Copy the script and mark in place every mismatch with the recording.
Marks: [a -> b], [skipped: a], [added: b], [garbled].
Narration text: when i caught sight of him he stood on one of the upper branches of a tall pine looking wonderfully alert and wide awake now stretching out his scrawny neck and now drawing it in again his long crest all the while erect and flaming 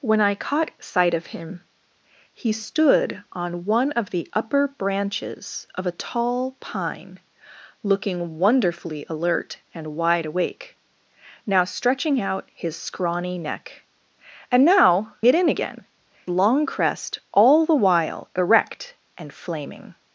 when i caught sight of him he stood on one of the upper branches of a tall pine looking wonderfully alert and wide awake now stretching out his scrawny neck and now [skipped: drawing] it in again [skipped: his] long crest all the while erect and flaming